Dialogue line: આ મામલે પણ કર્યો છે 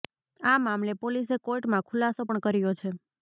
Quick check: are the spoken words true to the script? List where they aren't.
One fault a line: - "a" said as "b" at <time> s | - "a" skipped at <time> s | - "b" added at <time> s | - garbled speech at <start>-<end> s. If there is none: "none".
- "પોલીસે કોર્ટમાં ખુલાસો" added at 1.0 s